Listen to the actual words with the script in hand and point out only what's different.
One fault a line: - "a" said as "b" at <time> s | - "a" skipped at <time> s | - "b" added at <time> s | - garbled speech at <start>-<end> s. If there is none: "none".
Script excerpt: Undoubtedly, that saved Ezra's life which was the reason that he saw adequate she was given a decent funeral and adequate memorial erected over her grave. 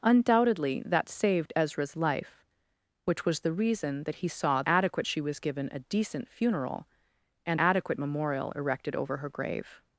none